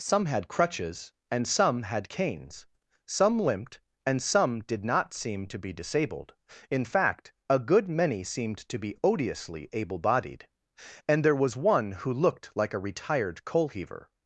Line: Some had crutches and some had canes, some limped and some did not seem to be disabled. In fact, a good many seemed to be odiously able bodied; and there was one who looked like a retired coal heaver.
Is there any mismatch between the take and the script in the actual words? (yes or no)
no